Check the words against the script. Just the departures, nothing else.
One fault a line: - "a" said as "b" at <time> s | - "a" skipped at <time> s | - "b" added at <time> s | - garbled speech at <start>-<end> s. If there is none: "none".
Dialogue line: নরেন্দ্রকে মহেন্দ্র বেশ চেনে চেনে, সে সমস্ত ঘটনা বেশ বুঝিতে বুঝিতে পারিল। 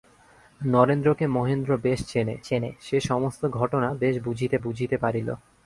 none